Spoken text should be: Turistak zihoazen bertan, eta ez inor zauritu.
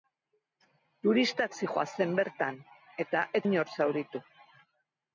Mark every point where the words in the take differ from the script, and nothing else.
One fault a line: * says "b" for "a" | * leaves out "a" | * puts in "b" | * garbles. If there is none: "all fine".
all fine